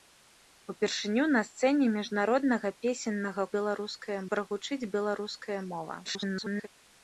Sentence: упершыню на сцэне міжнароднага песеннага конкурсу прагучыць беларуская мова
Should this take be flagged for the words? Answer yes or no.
yes